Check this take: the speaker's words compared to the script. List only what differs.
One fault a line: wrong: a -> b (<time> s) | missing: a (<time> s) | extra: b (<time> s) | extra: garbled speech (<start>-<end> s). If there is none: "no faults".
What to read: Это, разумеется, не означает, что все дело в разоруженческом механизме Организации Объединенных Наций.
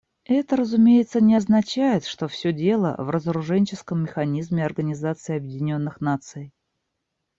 no faults